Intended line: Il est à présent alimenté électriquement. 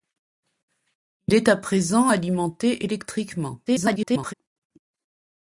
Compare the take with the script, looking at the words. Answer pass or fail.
fail